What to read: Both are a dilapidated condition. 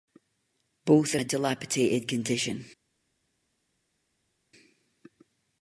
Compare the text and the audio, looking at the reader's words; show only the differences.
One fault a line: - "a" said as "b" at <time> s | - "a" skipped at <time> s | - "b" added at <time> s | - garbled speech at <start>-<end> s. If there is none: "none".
none